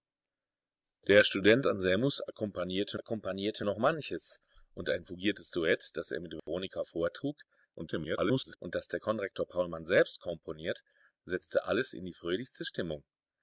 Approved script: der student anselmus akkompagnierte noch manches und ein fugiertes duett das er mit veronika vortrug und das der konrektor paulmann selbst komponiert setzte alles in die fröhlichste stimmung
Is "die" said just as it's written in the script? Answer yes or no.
yes